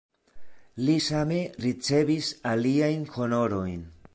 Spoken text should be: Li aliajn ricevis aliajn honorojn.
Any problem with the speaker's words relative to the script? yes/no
yes